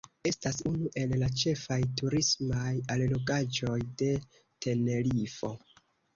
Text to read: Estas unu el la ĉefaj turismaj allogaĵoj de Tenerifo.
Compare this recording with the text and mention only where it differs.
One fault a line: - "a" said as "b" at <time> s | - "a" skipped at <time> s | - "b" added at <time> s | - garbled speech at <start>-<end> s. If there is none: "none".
none